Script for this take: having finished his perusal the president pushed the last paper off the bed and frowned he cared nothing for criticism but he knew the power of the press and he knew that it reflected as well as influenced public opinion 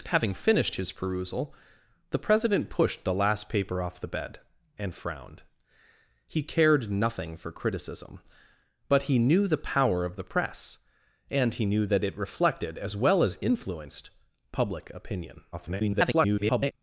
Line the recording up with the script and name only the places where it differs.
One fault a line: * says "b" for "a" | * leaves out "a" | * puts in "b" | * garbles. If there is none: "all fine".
* garbles